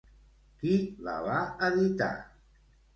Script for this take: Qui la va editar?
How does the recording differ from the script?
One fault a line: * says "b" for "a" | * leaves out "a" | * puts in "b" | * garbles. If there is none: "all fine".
all fine